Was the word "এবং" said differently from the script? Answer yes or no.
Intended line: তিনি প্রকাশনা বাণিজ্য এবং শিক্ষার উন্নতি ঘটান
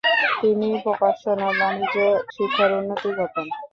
yes